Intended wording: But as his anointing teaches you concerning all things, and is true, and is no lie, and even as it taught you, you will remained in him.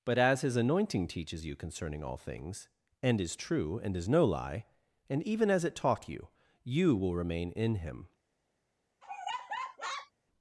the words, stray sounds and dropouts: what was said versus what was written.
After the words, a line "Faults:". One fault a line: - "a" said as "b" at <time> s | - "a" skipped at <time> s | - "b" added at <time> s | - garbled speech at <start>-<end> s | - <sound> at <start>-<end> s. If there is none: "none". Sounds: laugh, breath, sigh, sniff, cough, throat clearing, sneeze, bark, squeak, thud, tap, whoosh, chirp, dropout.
But as his anointing teaches you concerning all things, and is true, and is no lie, and even as it taught you, you will remain in him.
Faults:
- "remained" said as "remain" at 7.1 s
- laugh at 9.0-10.1 s